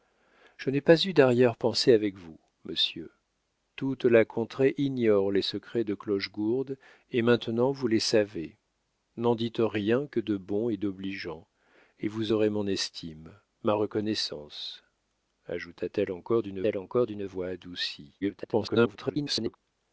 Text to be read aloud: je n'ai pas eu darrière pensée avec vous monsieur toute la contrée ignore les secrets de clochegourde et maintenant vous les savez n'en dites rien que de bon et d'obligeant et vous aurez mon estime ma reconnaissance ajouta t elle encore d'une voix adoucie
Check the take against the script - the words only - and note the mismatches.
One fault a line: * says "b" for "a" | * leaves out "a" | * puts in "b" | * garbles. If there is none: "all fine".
* puts in "elle encore d'une"
* garbles